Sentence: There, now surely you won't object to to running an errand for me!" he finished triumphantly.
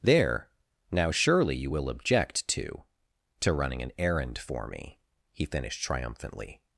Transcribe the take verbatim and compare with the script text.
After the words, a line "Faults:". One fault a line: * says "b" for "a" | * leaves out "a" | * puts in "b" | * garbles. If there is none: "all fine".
There, now surely you will object to to running an errand for me!" he finished triumphantly.
Faults:
* says "will" for "won't"